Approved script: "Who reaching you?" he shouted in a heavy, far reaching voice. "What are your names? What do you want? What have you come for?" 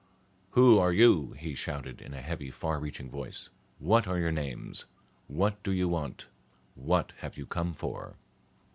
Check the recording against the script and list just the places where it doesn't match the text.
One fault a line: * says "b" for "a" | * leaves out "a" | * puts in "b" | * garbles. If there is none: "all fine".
* says "are" for "reaching"